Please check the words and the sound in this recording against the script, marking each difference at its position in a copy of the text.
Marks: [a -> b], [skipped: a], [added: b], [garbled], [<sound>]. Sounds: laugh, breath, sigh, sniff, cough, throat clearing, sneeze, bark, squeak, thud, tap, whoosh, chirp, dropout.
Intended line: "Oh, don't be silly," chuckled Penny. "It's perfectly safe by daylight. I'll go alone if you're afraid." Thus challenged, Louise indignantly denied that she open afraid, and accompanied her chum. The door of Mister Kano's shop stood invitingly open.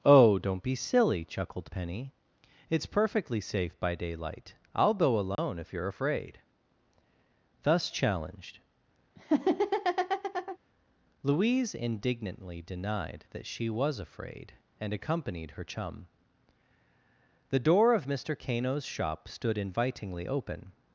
"Oh, don't be silly," chuckled Penny. "It's perfectly safe by daylight. I'll go alone [dropout] if you're afraid." Thus challenged, [laugh] Louise indignantly denied that she [open -> was] afraid, and accompanied her chum. The door of Mister Kano's shop stood invitingly open.